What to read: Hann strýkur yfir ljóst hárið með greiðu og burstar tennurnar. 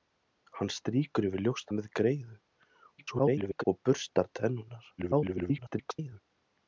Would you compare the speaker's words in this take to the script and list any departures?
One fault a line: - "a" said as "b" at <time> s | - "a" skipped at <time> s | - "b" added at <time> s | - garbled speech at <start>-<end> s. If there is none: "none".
- "hárið" skipped at 1.7 s
- garbled speech at 3.0-3.6 s
- garbled speech at 5.0-6.2 s